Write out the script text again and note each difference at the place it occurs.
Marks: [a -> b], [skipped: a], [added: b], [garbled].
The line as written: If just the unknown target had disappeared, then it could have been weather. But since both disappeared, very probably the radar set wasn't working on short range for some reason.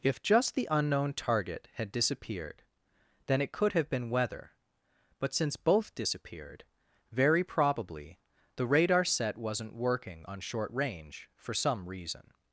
If just the unknown target had disappeared, then it could have been weather. But since both disappeared, very probably the radar set wasn't working on short range for some reason.